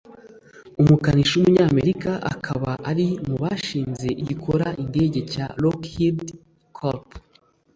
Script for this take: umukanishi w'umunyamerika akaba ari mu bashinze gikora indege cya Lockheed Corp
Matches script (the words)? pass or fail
pass